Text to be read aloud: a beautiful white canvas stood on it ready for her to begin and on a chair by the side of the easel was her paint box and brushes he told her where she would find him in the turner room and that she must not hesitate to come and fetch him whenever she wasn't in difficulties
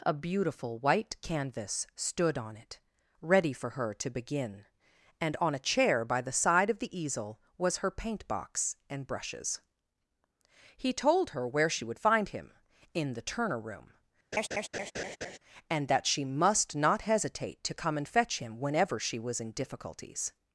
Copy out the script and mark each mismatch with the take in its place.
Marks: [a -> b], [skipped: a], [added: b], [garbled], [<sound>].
a beautiful white canvas stood on it ready for her to begin and on a chair by the side of the easel was her paint box and brushes he told her where she would find him in the turner room [laugh] and that she must not hesitate to come and fetch him whenever she [wasn't -> was] in difficulties